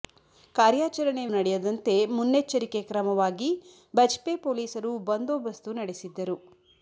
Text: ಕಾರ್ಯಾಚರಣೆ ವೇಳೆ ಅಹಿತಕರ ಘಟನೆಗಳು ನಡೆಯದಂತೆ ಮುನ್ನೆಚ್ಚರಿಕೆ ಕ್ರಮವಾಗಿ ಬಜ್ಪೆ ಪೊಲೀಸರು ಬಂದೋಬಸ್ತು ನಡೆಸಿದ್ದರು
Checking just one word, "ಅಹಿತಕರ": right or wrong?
wrong